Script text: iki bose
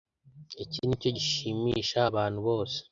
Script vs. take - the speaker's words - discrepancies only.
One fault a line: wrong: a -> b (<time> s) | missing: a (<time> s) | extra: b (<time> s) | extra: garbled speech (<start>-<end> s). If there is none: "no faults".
extra: nicyo gishimisha abantu (0.9 s)